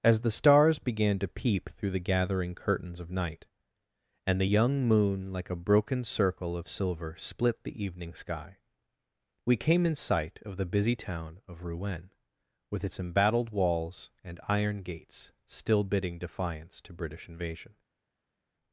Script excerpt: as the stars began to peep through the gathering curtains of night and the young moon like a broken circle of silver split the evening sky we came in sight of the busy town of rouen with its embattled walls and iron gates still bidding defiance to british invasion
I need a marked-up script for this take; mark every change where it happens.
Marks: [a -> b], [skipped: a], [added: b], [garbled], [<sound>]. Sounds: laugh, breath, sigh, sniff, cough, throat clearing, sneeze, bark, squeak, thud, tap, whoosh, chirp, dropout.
as the stars began to peep through the gathering curtains of night and the young moon like a broken circle of silver split the evening sky we came in sight of the busy town of rouen with its embattled walls and iron gates still bidding defiance to british invasion